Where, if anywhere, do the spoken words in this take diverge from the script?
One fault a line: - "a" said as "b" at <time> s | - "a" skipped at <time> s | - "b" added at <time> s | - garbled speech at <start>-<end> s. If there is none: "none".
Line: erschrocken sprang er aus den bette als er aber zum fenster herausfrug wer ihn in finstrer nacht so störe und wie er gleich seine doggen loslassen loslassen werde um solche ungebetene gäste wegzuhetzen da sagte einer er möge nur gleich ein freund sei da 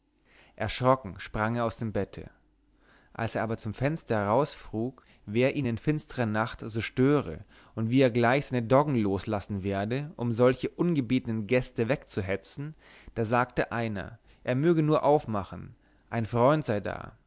- "den" said as "dem" at 1.8 s
- "loslassen" skipped at 9.6 s
- "gleich" said as "aufmachen" at 15.0 s